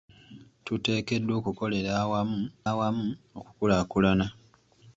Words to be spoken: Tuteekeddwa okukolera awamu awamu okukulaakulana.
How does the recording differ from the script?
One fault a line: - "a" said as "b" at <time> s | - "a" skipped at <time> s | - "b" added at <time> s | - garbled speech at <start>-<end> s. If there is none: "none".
none